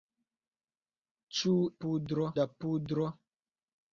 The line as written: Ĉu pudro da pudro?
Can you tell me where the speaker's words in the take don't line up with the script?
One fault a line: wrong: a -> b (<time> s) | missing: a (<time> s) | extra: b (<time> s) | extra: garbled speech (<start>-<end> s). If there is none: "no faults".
no faults